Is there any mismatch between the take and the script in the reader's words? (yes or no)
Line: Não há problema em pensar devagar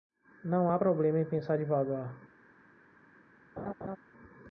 no